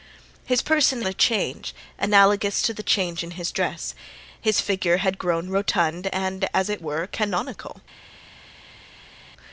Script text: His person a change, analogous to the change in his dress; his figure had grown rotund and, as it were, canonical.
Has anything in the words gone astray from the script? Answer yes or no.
no